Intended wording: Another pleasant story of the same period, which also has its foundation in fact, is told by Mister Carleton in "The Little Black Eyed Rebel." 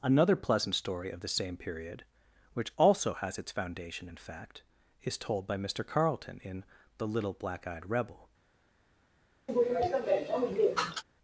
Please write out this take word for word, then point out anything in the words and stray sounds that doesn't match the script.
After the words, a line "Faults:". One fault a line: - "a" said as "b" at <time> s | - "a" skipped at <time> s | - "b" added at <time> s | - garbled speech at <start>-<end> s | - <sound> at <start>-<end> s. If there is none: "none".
Another pleasant story of the same period, which also has its foundation in fact, is told by Mister Carleton in "The Little Black Eyed Rebel."
Faults:
- sneeze at 9.5-11.0 s